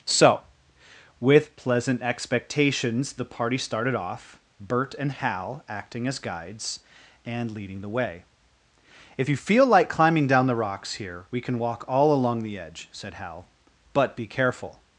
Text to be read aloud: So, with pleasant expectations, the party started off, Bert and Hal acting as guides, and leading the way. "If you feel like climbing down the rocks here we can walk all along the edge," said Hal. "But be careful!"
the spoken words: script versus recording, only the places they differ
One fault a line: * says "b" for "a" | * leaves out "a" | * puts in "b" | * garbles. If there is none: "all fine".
all fine